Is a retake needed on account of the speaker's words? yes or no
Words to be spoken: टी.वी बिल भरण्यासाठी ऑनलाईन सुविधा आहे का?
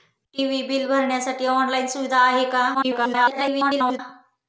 yes